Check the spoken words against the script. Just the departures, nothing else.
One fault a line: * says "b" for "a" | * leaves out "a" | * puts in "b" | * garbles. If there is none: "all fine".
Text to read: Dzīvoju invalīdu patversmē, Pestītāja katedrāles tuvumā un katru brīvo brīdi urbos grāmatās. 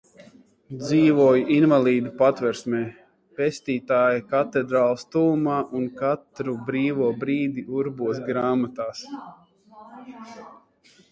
all fine